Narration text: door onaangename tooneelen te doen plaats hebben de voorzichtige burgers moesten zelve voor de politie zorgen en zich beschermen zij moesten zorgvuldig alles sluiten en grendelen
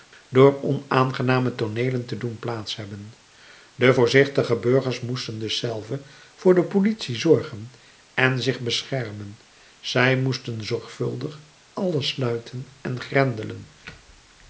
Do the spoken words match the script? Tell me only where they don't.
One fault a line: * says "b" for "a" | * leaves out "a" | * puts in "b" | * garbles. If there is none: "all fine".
* puts in "dus"